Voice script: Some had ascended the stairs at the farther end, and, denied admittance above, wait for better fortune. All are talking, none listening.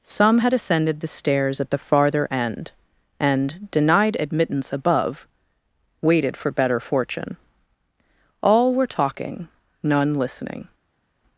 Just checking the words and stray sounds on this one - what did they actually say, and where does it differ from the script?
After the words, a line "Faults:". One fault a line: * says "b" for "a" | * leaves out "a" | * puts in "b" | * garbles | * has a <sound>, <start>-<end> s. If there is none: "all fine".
Some had ascended the stairs at the farther end, and, denied admittance above, waited for better fortune. All were talking, none listening.
Faults:
* says "waited" for "wait"
* says "were" for "are"